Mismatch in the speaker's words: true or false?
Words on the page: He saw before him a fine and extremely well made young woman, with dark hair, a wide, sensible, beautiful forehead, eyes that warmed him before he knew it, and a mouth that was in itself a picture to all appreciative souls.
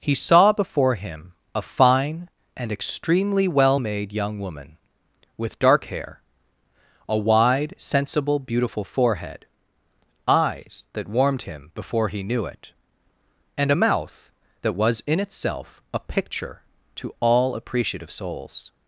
false